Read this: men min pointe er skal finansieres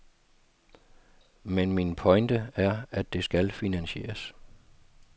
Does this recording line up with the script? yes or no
no